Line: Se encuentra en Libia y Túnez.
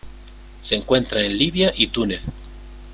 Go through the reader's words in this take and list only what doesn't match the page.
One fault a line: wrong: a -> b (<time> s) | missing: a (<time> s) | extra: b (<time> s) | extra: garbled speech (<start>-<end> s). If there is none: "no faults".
no faults